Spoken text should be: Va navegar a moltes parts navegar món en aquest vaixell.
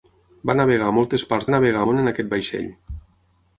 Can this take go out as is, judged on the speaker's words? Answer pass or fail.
pass